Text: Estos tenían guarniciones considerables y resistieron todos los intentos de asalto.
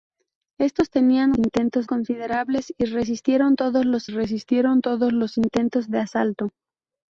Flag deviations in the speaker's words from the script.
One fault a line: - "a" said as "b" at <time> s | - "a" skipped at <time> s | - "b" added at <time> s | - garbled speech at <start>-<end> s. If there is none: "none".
- "guarniciones" said as "intentos" at 1.4 s
- "resistieron todos los" added at 4.1 s